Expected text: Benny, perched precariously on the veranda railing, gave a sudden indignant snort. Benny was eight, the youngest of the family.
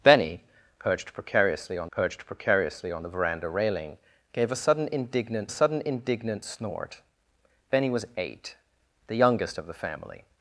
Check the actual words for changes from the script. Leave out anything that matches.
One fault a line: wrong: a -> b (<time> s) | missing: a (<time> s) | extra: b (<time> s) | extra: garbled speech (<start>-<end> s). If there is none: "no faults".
extra: perched precariously on (1.9 s)
extra: sudden indignant (5.5 s)